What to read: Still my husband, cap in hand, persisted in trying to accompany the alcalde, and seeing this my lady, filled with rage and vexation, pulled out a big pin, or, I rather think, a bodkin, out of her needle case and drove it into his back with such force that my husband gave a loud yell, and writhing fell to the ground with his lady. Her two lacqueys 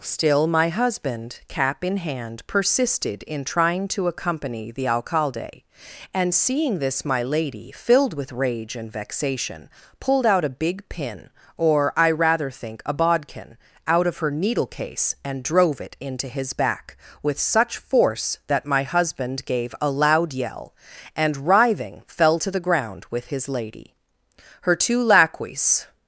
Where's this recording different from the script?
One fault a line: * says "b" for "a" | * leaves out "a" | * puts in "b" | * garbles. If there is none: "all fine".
all fine